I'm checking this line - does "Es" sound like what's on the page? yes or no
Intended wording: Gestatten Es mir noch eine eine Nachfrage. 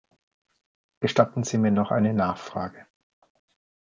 no